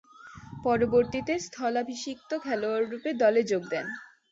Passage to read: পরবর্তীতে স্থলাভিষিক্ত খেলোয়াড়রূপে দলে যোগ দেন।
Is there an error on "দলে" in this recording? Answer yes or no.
no